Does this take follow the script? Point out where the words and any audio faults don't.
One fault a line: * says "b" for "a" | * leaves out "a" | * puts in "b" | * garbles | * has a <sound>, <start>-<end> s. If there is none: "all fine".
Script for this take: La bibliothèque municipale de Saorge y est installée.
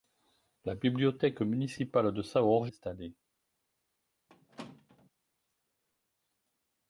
* leaves out "y est"
* has a squeak, 4.3-5.1 s